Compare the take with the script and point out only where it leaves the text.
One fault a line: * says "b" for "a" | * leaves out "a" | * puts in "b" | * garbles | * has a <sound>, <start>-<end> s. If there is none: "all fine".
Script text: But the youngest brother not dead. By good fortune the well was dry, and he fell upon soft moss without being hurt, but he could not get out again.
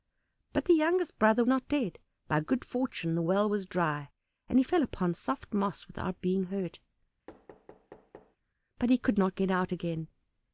* has a thud, 7.3-8.4 s